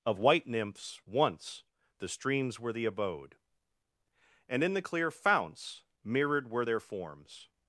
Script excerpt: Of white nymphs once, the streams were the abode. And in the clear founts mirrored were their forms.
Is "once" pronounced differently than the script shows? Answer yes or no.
no